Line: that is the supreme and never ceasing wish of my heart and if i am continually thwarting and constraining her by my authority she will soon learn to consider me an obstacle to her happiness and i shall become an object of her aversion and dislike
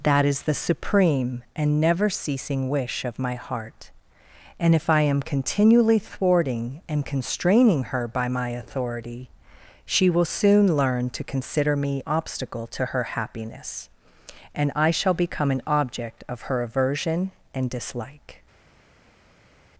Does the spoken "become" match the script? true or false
true